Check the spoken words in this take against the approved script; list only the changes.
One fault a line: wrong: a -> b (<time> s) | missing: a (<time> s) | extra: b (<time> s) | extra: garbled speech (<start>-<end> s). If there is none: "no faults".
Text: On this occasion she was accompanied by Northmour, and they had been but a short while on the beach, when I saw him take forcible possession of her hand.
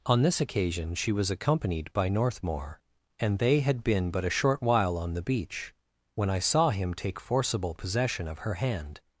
no faults